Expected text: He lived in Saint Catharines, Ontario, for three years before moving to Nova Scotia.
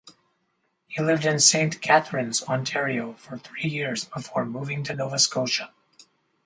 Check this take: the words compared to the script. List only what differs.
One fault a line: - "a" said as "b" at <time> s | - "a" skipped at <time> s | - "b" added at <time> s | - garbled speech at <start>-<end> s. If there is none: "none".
none